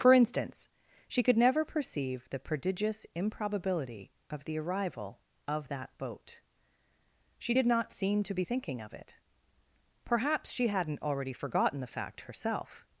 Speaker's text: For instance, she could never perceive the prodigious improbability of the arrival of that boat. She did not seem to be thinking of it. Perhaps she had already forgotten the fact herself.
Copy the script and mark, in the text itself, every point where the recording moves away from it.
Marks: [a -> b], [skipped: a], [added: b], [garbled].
For instance, she could never perceive the prodigious improbability of the arrival of that boat. She did not seem to be thinking of it. Perhaps she [had -> hadn't] already forgotten the fact herself.